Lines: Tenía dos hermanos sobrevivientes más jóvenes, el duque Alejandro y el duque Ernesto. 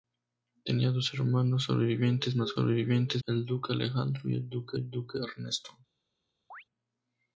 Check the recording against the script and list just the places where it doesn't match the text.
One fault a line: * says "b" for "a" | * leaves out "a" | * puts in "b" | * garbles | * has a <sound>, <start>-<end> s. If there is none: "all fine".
* says "sobrevivientes" for "jóvenes"
* puts in "el duque"
* has a chirp, 6.5-6.6 s